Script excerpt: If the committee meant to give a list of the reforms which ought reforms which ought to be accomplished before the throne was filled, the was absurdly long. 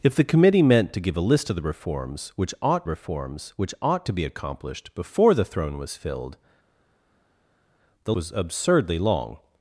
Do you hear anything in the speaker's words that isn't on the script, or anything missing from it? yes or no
no